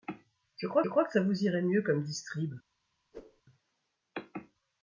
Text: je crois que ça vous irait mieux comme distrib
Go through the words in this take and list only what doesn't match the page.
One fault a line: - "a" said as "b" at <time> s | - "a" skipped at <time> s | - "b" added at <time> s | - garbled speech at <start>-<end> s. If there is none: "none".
- "crois" added at 0.9 s